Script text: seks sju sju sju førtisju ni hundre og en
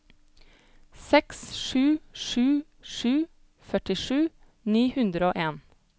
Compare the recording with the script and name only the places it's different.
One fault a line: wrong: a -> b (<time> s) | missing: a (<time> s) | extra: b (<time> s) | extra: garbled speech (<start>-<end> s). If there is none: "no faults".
no faults